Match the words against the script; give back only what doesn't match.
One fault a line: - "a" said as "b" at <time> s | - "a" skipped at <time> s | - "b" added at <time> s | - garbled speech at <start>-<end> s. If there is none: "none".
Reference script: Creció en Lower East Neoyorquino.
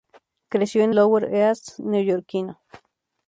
none